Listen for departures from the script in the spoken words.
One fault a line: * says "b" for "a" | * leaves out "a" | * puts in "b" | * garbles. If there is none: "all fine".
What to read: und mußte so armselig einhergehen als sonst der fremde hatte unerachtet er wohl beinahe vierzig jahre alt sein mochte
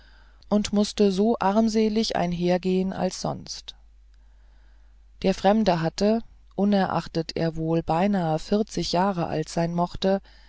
all fine